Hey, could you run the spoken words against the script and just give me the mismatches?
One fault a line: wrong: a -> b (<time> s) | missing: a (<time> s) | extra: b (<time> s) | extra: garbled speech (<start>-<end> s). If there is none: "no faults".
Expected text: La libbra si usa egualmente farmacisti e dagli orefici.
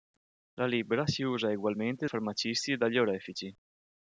no faults